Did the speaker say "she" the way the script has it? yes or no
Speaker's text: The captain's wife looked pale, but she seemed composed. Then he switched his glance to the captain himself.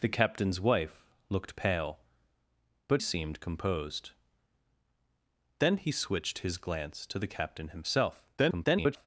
no